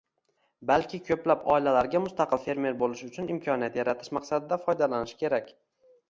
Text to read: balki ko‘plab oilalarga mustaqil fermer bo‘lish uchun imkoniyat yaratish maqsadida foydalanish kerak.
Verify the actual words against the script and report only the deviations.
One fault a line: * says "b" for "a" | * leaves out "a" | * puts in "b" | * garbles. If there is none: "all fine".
all fine